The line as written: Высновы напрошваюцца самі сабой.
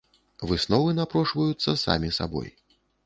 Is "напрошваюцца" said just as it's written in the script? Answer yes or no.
yes